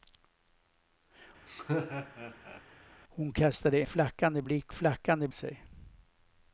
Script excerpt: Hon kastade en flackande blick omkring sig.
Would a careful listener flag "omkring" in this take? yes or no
yes